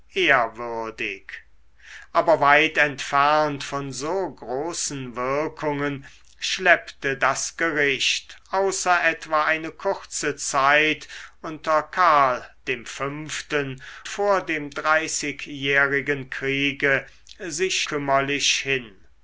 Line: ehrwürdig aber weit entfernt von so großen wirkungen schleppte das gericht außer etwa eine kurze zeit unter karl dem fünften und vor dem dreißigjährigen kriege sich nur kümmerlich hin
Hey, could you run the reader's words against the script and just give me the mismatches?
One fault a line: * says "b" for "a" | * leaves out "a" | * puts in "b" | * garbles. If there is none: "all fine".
* leaves out "und"
* leaves out "nur"